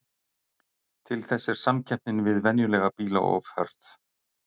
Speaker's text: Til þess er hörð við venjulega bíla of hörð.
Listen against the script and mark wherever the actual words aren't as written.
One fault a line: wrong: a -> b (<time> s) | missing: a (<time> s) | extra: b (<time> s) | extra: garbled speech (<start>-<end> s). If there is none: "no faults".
wrong: hörð -> samkeppnin (1.6 s)